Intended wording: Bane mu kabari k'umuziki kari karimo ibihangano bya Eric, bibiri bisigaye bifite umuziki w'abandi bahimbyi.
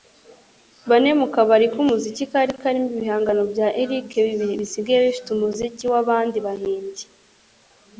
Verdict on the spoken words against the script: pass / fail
pass